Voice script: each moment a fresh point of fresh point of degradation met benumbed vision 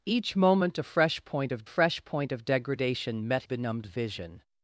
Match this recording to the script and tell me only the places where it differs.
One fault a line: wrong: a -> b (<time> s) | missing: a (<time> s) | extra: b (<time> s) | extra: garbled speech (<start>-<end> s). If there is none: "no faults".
no faults